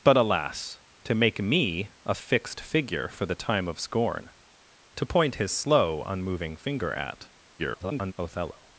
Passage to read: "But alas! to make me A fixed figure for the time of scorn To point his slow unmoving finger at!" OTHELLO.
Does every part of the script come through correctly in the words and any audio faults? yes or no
no